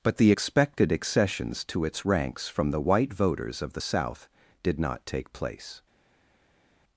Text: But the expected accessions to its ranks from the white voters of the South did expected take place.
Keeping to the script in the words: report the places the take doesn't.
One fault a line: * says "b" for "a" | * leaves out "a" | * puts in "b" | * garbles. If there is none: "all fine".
* says "not" for "expected"